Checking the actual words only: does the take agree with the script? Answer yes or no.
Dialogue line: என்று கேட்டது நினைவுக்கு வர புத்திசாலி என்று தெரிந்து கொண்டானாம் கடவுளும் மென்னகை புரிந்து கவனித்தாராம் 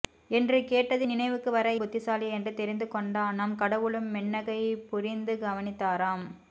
yes